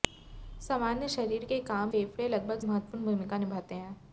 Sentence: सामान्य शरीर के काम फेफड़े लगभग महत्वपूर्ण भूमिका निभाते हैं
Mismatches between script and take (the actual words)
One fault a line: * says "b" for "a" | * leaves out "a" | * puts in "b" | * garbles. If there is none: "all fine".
all fine